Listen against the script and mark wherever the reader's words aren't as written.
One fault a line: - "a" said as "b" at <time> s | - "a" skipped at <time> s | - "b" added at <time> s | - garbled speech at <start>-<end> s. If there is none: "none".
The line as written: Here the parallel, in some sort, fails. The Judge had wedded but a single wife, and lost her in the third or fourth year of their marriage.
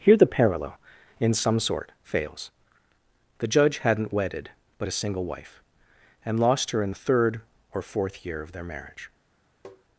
- "had" said as "hadn't" at 3.8 s